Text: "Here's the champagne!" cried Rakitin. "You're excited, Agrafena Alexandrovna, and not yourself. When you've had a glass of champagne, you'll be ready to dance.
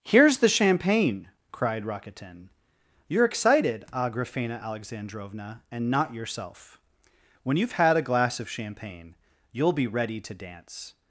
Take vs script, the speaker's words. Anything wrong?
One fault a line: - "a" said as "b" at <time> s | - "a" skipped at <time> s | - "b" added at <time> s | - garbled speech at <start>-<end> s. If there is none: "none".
none